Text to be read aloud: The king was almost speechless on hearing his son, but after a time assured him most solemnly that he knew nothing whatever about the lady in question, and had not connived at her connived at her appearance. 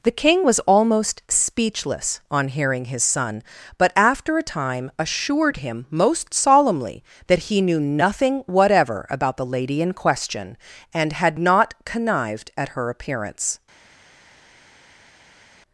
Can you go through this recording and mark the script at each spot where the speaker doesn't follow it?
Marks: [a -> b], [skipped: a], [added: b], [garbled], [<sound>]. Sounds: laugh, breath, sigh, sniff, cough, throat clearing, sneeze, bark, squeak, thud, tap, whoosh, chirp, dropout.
The king was almost speechless on hearing his son, but after a time assured him most solemnly that he knew nothing whatever about the lady in question, and had not connived at her [skipped: connived at her] appearance.